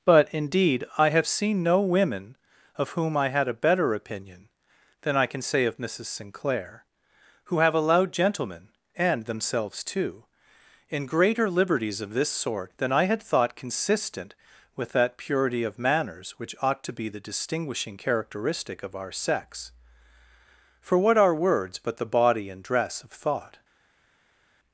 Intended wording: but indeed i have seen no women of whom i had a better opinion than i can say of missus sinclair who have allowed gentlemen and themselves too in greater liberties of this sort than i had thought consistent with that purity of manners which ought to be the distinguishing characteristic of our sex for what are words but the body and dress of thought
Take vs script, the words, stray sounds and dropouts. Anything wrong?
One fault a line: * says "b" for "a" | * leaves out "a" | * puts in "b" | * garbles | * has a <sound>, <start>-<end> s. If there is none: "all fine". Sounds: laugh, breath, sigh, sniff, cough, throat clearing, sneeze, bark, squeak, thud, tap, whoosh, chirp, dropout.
all fine